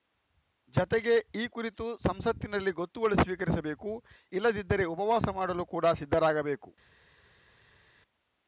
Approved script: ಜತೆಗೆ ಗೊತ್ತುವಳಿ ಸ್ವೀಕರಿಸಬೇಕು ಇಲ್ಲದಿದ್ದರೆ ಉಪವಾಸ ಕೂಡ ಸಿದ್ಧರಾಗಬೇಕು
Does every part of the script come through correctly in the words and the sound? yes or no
no